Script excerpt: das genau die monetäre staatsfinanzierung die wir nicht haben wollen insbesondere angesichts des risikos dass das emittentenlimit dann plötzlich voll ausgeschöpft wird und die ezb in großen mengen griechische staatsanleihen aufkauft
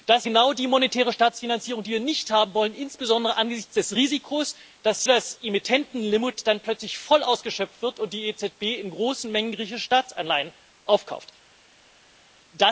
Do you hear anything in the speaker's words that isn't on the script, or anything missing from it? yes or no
no